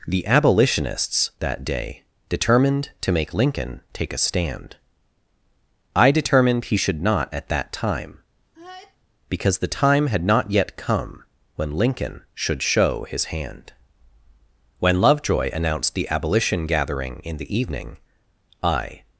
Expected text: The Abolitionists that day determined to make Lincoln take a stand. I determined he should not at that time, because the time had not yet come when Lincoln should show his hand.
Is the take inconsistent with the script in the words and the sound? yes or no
yes